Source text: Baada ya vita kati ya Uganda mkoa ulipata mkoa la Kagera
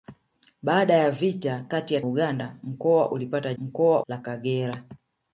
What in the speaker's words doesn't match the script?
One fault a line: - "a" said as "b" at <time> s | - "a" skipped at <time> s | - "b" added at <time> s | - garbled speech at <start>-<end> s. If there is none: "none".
none